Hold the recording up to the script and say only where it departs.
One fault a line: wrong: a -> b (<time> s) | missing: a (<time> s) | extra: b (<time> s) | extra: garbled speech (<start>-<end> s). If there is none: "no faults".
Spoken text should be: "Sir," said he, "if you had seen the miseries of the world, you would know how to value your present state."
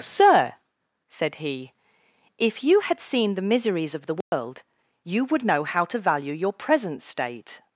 no faults